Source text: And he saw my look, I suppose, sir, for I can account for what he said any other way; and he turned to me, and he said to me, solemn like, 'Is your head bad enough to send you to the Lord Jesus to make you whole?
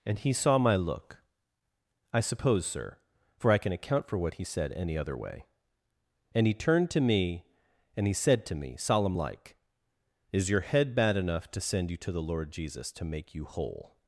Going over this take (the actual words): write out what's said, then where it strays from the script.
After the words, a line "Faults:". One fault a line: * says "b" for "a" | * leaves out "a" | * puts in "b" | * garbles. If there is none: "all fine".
And he saw my look, I suppose, sir, for I can account for what he said any other way; and he turned to me, and he said to me, solemn like, 'Is your head bad enough to send you to the Lord Jesus to make you whole?
Faults:
all fine